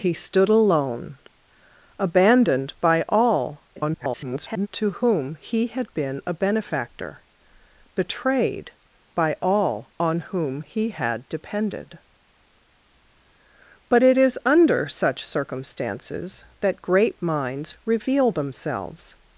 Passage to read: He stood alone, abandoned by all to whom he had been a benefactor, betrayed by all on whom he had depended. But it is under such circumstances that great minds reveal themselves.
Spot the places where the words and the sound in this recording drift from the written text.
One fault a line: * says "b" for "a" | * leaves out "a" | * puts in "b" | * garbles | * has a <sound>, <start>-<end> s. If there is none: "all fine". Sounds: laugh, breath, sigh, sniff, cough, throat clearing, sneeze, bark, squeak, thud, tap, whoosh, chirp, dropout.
* garbles